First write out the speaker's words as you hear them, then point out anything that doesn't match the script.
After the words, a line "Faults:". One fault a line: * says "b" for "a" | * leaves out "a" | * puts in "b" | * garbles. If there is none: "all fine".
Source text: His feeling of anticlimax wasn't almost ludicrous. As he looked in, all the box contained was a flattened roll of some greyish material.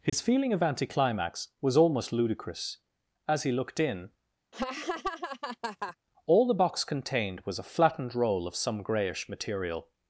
His feeling of anticlimax was almost ludicrous. As he looked in, all the box contained was a flattened roll of some greyish material.
Faults:
* says "was" for "wasn't"